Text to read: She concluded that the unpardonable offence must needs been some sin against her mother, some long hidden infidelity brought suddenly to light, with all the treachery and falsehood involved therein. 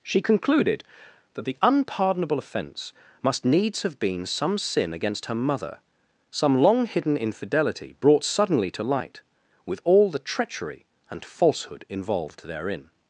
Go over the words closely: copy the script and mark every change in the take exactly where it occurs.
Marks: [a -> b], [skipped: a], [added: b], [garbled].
She concluded that the unpardonable offence must needs [added: have] been some sin against her mother, some long hidden infidelity brought suddenly to light, with all the treachery and falsehood involved therein.